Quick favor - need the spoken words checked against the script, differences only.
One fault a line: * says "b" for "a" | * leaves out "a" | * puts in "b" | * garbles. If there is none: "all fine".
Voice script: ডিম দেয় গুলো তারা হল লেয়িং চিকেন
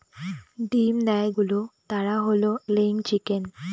all fine